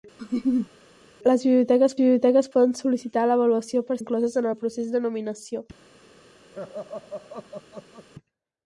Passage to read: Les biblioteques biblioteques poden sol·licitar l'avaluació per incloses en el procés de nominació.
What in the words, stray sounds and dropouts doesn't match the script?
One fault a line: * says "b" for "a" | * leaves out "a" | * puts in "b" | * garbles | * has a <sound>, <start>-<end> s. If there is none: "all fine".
* has a laugh, 0.2-0.7 s
* has a laugh, 6.5-8.1 s